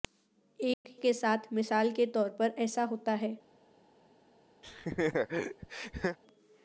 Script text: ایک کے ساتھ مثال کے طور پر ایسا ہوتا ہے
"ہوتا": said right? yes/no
yes